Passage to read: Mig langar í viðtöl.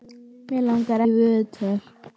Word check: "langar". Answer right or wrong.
right